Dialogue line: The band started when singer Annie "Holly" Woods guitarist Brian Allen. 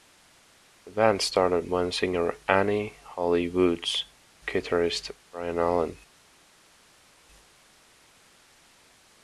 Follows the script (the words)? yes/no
yes